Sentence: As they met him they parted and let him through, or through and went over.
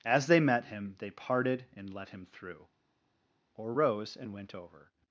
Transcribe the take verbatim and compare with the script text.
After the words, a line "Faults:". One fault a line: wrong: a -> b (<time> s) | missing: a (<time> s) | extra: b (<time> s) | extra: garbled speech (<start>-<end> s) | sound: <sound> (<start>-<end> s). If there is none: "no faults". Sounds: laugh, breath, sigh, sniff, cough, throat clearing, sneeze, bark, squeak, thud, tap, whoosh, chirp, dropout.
As they met him they parted and let him through, or rose and went over.
Faults:
wrong: through -> rose (3.7 s)